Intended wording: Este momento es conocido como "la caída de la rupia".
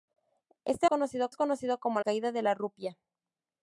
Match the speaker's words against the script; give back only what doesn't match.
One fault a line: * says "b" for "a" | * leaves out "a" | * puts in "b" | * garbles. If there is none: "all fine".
* says "conocido" for "momento"
* leaves out "la"